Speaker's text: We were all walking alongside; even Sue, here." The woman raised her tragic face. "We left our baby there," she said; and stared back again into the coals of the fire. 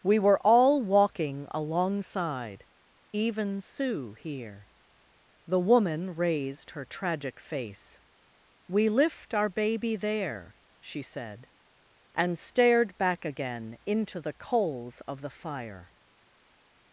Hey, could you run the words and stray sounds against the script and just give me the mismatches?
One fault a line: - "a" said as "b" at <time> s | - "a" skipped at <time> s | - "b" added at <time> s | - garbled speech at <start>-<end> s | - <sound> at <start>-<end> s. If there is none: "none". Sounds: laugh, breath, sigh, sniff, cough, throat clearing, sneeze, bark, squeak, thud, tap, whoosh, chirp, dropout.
- "left" said as "lift" at 8.9 s